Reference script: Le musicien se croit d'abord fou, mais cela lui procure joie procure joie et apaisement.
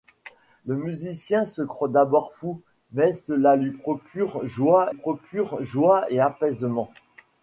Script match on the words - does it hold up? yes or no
yes